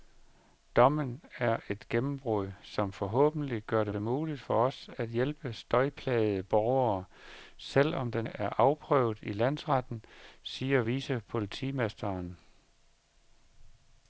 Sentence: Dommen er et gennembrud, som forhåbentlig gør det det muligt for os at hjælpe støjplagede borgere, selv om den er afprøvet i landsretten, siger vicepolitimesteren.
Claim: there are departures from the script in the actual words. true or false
false